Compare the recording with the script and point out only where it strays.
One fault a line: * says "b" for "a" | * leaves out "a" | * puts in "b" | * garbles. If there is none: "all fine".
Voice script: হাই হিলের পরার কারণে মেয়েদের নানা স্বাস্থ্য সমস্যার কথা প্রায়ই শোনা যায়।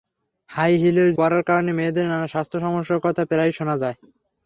all fine